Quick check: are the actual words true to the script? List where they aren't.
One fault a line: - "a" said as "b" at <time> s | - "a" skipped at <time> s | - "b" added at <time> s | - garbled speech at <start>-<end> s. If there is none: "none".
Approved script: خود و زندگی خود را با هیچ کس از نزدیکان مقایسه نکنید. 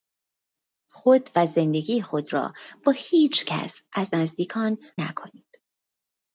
- "مقایسه" skipped at 4.8 s